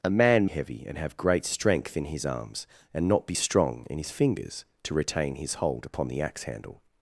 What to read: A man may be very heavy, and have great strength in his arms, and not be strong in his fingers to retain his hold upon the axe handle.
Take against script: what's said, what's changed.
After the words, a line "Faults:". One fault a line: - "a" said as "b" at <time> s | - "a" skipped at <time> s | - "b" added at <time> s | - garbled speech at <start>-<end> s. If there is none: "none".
A man heavy, and have great strength in his arms, and not be strong in his fingers to retain his hold upon the axe handle.
Faults:
- "may be very" skipped at 0.5 s